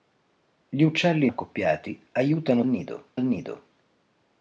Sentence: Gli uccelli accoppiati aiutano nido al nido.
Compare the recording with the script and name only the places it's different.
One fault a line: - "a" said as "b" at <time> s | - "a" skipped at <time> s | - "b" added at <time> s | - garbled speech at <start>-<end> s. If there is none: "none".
none